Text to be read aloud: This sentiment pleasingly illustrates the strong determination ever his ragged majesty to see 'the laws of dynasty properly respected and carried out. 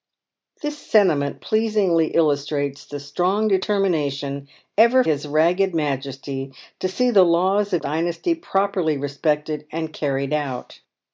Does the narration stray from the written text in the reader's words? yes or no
no